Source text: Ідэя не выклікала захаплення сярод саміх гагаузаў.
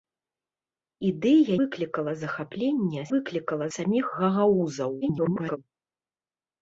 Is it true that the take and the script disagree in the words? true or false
true